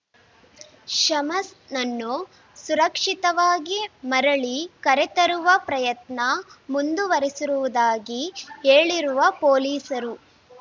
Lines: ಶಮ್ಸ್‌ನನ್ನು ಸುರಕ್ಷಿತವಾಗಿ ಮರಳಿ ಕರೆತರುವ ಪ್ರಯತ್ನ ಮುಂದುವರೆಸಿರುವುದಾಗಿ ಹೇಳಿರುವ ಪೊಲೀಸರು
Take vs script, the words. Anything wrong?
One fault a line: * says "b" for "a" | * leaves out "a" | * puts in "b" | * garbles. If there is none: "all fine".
all fine